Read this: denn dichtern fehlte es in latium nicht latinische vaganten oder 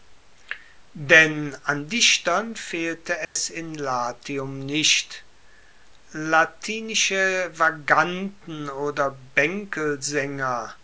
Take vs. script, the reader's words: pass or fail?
fail